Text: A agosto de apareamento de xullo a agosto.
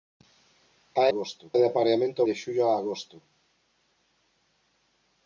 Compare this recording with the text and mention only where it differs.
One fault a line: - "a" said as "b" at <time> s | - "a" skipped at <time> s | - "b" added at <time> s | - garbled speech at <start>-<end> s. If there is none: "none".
none